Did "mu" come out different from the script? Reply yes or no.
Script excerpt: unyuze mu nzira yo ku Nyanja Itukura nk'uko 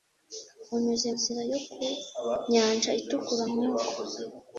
yes